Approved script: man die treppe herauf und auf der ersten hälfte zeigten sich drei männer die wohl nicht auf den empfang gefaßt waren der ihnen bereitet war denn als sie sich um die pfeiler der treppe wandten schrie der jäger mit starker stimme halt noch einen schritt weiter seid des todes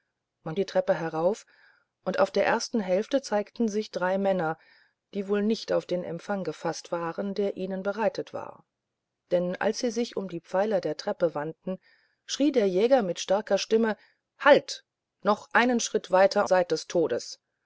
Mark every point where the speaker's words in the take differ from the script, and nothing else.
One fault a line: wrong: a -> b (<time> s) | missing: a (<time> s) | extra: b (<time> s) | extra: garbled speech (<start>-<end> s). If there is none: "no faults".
no faults